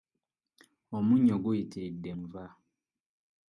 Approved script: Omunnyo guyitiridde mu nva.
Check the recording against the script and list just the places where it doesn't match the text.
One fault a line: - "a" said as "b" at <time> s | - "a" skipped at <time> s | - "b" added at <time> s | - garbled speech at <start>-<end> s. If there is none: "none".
- "mu" skipped at 2.1 s